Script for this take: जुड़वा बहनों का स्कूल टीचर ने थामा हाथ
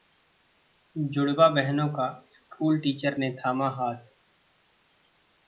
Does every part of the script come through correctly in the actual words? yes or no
yes